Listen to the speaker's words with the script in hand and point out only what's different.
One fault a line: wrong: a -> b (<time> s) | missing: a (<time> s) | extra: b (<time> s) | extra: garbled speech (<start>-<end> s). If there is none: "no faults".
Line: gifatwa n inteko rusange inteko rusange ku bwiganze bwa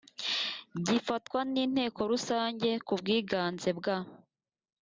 missing: inteko rusange (2.7 s)